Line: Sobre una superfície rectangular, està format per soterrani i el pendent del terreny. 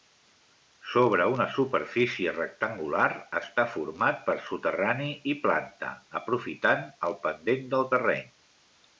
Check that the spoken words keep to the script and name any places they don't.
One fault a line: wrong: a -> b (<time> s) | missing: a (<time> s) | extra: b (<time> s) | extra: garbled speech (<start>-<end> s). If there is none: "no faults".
extra: planta aprofitant (5.4 s)